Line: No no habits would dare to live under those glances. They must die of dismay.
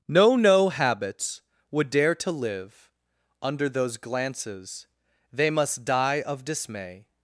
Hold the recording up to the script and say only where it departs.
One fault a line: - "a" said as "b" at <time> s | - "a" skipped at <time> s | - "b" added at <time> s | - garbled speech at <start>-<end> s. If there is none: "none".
none